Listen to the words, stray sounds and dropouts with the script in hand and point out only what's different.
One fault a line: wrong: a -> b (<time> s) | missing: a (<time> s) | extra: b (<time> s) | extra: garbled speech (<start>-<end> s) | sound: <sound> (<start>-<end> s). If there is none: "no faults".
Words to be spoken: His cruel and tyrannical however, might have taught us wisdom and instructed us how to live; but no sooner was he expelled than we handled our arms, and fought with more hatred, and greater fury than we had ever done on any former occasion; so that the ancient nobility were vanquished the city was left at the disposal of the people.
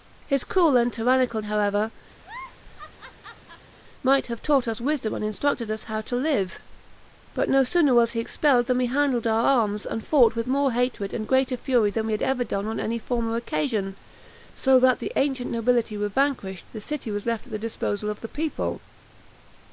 sound: laugh (2.2-3.7 s)